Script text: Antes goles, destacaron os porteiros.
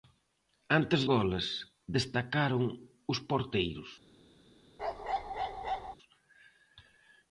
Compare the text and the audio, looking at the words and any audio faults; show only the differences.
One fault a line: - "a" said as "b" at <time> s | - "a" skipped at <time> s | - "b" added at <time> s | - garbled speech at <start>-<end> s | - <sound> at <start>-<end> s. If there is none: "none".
- bark at 4.8-6.0 s